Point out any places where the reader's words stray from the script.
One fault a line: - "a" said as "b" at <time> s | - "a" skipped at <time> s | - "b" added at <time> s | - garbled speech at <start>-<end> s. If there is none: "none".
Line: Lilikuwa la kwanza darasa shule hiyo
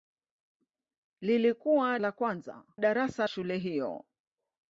none